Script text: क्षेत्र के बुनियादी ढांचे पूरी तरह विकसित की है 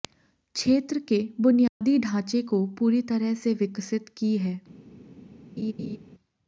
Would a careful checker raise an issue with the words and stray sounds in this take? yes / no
yes